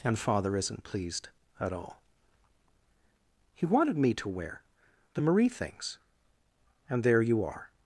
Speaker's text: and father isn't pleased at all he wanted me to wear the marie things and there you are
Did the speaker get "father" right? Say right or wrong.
right